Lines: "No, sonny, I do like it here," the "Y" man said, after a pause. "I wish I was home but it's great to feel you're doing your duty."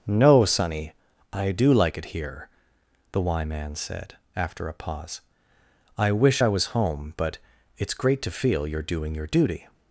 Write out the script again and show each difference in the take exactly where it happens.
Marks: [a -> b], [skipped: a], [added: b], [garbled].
"No, sonny, I do like it here," the "Y" man said, after a pause. "I wish I was home but it's great to feel you're doing your duty."